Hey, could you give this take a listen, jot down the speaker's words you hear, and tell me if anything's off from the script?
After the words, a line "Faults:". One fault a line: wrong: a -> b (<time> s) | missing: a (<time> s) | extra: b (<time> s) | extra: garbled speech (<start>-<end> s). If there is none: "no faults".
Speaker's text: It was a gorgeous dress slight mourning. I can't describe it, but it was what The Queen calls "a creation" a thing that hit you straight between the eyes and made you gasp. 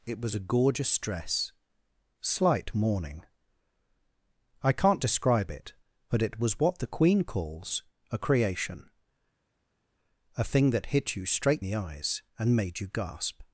It was a gorgeous dress slight mourning. I can't describe it, but it was what The Queen calls "a creation" a thing that hit you straight the eyes and made you gasp.
Faults:
missing: between (11.6 s)